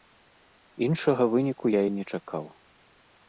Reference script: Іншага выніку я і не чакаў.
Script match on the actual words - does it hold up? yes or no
yes